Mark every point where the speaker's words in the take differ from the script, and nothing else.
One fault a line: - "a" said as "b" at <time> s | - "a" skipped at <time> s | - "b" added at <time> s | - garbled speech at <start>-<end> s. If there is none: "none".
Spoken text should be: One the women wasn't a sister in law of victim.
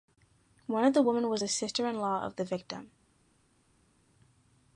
- "of" added at 0.8 s
- "wasn't" said as "was" at 1.3 s
- "the" added at 2.4 s